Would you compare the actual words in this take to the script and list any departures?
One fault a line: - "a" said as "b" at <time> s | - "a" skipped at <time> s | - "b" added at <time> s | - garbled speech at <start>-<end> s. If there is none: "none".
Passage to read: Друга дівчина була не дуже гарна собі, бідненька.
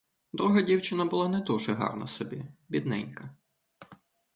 none